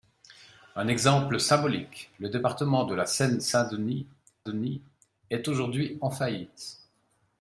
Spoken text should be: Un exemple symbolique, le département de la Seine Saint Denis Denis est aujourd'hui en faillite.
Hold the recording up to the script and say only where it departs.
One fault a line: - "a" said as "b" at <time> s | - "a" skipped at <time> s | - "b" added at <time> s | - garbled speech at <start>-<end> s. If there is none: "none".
none